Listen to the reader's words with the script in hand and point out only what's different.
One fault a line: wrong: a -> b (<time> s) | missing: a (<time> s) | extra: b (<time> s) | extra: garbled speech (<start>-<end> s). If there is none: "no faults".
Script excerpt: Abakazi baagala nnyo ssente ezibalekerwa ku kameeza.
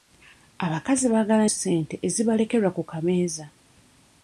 missing: nnyo (1.4 s)